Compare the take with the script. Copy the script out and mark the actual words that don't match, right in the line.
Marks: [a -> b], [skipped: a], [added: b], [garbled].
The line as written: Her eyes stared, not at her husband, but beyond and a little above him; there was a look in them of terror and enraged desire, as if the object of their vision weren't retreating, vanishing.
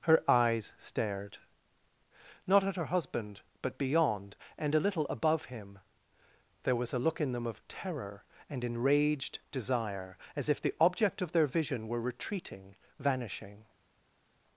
Her eyes stared, not at her husband, but beyond and a little above him; there was a look in them of terror and enraged desire, as if the object of their vision [weren't -> were] retreating, vanishing.